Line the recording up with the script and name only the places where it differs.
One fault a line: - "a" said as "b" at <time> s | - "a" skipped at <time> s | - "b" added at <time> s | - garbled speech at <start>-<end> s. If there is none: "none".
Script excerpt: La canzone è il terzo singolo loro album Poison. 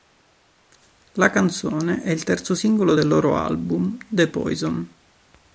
- "del" added at 2.9 s
- "The" added at 4.1 s